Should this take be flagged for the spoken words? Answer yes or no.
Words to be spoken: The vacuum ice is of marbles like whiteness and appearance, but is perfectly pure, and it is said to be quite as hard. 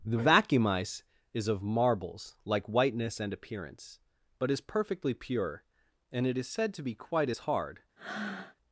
no